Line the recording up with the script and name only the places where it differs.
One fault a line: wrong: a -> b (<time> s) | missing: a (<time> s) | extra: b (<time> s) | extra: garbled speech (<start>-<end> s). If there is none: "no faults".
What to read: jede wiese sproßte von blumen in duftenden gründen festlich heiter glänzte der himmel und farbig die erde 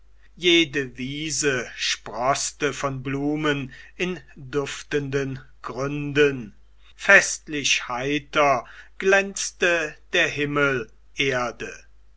missing: und farbig die (10.9 s)